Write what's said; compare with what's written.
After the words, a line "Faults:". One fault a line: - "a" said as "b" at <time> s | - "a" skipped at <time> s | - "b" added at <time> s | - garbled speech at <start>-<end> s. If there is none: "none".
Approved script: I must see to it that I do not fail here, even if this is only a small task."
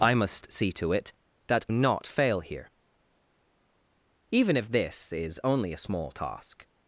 I must see to it that not fail here, even if this is only a small task."
Faults:
- "I do" skipped at 1.6 s